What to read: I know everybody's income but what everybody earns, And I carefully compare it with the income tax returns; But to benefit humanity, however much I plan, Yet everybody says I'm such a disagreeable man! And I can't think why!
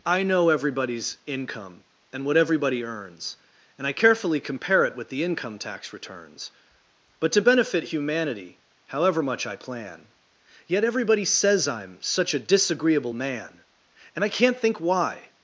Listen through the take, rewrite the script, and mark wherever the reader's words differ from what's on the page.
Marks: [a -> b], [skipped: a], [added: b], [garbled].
I know everybody's income [but -> and] what everybody earns, And I carefully compare it with the income tax returns; But to benefit humanity, however much I plan, Yet everybody says I'm such a disagreeable man! And I can't think why!